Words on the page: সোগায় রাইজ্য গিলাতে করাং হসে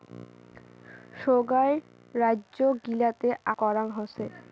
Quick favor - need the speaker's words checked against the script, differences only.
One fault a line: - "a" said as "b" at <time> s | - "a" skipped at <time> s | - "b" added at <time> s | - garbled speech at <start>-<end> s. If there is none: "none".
none